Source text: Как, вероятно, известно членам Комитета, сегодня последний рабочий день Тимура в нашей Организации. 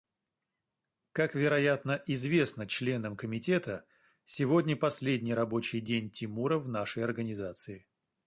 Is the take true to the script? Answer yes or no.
yes